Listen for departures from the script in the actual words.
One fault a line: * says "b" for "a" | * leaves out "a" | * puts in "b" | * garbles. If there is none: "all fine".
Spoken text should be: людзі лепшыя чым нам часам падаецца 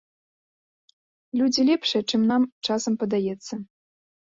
all fine